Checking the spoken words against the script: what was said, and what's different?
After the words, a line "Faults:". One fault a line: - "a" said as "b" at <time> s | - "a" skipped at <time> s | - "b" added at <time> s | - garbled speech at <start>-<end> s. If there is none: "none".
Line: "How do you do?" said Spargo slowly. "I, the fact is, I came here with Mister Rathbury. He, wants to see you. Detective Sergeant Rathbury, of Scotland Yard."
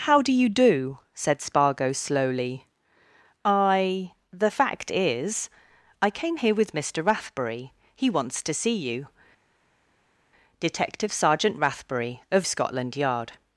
"How do you do?" said Spargo slowly. "I, the fact is, I came here with Mister Rathbury. He, wants to see you. Detective Sergeant Rathbury, of Scotland Yard."
Faults:
none